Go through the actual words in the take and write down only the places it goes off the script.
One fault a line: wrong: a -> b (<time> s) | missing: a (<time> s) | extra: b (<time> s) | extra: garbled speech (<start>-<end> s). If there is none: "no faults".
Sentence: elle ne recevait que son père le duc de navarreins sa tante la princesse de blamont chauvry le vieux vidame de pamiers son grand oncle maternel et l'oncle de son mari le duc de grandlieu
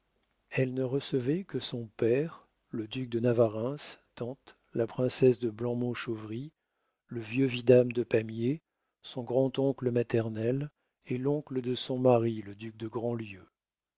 missing: sa (3.8 s)